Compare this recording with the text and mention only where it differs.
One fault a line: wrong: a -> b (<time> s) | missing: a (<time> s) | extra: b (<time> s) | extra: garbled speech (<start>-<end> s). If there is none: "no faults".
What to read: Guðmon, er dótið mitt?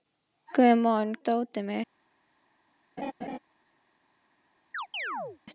no faults